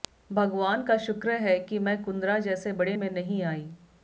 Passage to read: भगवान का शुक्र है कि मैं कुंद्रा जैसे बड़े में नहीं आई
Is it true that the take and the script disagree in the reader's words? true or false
false